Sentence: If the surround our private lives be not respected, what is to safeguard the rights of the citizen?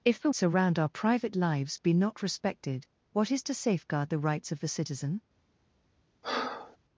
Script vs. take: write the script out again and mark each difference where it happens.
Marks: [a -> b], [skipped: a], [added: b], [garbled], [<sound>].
If the surround our private lives be not respected, what is to safeguard the rights of the citizen? [breath]